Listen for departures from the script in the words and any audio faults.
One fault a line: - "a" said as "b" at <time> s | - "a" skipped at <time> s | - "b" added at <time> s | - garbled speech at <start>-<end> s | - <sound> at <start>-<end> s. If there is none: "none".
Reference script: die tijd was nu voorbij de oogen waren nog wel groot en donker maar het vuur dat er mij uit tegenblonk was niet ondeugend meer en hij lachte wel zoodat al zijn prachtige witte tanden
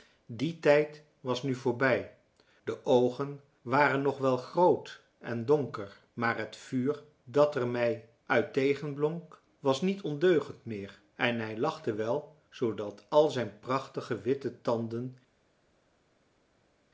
none